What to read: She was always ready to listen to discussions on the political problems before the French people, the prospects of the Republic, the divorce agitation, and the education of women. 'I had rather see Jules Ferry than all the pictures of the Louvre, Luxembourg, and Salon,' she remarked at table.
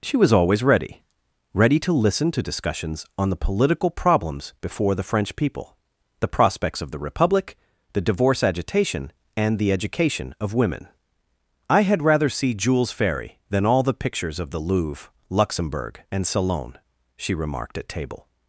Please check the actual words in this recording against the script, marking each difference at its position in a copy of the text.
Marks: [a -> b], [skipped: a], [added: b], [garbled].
She was always ready [added: ready] to listen to discussions on the political problems before the French people, the prospects of the Republic, the divorce agitation, and the education of women. 'I had rather see Jules Ferry than all the pictures of the Louvre, Luxembourg, and Salon,' she remarked at table.